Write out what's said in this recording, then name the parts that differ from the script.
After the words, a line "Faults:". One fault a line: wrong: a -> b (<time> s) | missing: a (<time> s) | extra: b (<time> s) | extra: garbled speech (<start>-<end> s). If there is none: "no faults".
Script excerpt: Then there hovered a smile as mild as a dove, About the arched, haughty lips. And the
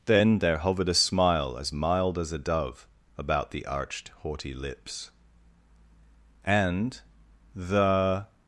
Then there hovered a smile as mild as a dove, About the arched, haughty lips. And the
Faults:
no faults